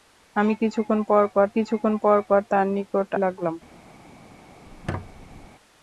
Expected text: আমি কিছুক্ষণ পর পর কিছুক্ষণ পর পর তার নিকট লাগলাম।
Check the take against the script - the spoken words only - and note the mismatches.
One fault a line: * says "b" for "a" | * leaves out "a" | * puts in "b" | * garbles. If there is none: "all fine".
all fine